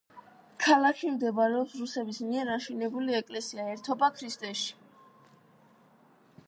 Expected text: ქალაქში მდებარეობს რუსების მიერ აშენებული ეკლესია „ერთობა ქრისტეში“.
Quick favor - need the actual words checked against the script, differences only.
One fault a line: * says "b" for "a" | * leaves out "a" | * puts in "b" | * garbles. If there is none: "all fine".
all fine